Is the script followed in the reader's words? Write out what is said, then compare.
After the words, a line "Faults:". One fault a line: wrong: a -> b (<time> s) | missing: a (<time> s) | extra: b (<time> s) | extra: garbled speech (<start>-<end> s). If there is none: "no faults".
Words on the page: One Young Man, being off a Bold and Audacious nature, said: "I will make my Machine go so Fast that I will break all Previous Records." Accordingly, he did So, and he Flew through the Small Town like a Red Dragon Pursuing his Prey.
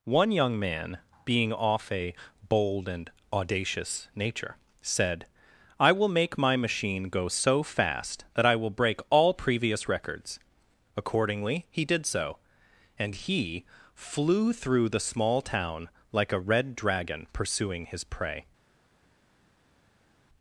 One Young Man, being off a Bold and Audacious nature, said: "I will make my Machine go so Fast that I will break all Previous Records." Accordingly, he did So, and he Flew through the Small Town like a Red Dragon Pursuing his Prey.
Faults:
no faults